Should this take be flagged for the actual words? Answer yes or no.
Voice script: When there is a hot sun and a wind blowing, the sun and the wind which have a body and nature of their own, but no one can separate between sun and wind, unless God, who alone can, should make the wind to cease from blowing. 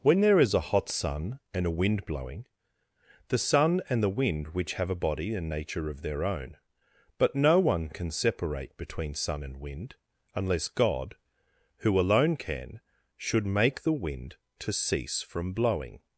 no